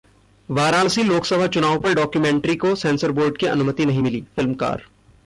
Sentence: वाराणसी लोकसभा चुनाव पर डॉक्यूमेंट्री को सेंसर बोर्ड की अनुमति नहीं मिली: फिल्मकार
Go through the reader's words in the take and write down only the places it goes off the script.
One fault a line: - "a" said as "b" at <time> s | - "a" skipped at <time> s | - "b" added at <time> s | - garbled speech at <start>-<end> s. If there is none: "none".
none